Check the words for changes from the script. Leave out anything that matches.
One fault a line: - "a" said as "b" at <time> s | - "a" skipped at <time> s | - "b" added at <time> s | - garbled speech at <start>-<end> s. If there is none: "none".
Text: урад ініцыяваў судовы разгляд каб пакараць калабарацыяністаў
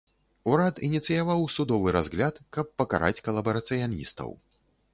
none